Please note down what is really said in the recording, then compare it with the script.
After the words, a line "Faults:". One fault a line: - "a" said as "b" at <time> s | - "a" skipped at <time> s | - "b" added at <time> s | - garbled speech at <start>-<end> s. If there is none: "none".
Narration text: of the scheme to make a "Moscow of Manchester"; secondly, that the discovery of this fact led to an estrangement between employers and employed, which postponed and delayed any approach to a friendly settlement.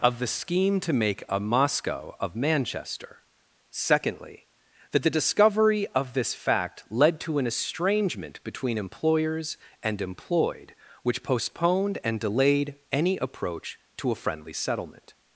of the scheme to make a "Moscow of Manchester"; secondly, that the discovery of this fact led to an estrangement between employers and employed, which postponed and delayed any approach to a friendly settlement.
Faults:
none